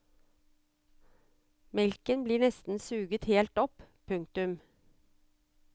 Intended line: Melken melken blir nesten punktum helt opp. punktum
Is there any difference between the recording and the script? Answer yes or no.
yes